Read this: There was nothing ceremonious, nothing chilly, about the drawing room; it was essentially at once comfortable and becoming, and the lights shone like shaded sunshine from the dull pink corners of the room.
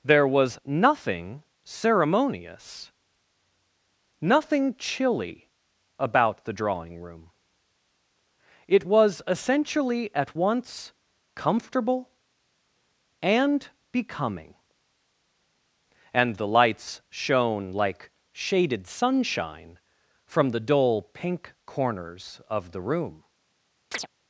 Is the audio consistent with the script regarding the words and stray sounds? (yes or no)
no